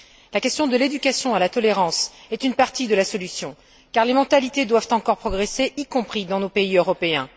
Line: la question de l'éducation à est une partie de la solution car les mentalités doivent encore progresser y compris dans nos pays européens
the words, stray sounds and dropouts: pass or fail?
fail